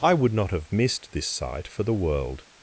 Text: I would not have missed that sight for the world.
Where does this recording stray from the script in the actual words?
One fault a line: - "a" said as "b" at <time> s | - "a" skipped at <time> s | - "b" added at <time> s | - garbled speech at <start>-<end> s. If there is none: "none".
- "that" said as "this" at 1.1 s